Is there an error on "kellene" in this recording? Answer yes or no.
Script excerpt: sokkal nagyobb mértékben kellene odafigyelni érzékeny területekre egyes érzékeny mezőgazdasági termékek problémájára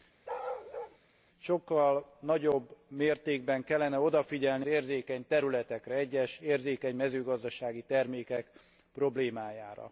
no